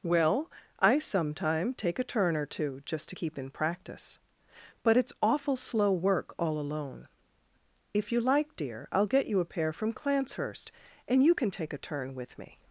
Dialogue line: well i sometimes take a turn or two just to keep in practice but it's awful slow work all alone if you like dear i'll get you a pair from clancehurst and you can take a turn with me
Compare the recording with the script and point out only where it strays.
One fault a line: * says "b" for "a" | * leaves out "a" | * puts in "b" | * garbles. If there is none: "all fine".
* says "sometime" for "sometimes"